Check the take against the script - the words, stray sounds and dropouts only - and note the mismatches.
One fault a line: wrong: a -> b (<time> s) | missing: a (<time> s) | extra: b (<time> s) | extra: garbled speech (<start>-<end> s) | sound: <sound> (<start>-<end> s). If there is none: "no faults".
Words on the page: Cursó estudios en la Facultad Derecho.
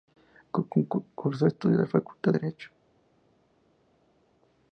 no faults